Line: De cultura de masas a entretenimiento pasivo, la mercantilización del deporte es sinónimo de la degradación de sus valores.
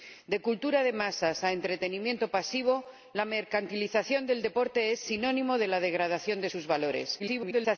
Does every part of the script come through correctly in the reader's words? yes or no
no